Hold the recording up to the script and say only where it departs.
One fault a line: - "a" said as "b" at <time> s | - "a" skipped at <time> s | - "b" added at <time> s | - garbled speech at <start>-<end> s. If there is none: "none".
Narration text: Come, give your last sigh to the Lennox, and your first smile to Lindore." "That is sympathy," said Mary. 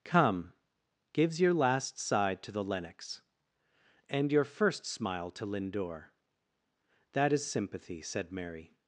- "give" said as "gives" at 1.1 s